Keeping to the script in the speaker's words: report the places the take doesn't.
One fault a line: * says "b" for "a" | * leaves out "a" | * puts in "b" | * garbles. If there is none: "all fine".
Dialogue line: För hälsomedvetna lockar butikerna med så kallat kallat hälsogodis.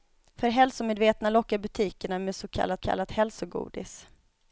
all fine